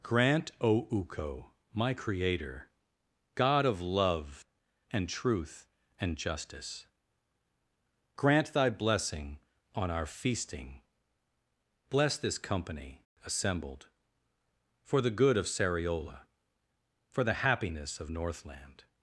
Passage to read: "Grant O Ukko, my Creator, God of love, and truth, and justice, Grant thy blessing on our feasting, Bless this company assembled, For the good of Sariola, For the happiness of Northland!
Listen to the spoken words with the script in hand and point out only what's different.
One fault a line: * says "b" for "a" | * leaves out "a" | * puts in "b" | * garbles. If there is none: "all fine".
all fine